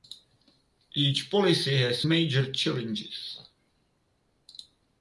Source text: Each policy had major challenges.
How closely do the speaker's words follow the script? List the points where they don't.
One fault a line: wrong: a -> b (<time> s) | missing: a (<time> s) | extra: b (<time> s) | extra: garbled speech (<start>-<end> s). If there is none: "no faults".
wrong: had -> has (1.8 s)